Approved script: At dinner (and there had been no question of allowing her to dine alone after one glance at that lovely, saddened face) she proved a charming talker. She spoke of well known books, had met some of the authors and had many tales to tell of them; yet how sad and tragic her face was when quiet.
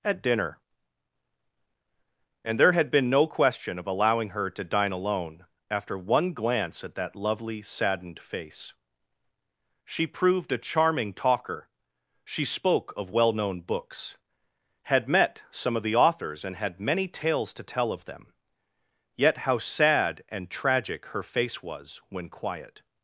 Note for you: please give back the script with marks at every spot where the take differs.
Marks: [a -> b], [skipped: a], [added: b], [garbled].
At dinner (and there had been no question of allowing her to dine alone after one glance at that lovely, saddened face) she proved a charming talker. She spoke of well known books, had met some of the authors and had many tales to tell of them; yet how sad and tragic her face was when quiet.